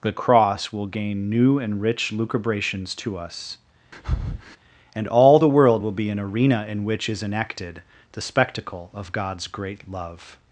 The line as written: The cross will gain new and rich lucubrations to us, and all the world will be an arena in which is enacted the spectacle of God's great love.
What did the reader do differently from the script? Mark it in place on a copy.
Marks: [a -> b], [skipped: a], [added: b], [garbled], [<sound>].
The cross will gain new and rich lucubrations to us, [breath] and all the world will be an arena in which is enacted the spectacle of God's great love.